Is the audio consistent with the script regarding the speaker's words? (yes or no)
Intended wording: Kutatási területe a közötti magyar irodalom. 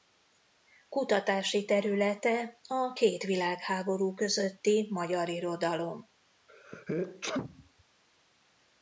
no